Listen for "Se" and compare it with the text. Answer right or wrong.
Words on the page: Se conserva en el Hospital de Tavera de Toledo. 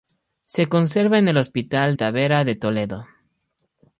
right